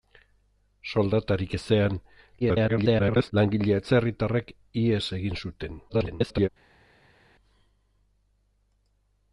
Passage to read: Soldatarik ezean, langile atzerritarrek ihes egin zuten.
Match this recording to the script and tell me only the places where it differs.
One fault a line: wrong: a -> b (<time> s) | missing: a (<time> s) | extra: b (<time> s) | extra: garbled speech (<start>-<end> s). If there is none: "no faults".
extra: garbled speech (2.4-3.3 s)
extra: garbled speech (5.9-6.5 s)